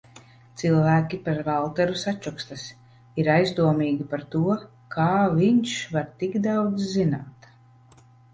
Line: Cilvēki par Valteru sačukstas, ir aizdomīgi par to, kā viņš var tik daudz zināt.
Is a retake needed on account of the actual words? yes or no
no